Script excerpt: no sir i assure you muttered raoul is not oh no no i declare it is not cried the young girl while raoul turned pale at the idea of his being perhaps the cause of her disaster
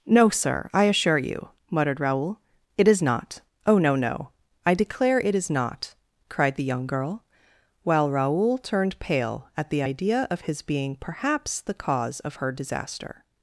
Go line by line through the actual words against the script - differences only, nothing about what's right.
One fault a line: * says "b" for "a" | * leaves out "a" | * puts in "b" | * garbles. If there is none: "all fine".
* puts in "it"